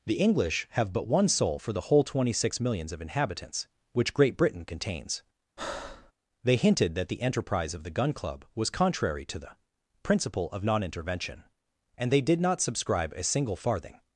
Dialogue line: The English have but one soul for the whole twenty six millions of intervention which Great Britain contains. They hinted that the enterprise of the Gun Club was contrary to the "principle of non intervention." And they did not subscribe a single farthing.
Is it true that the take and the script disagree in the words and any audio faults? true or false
true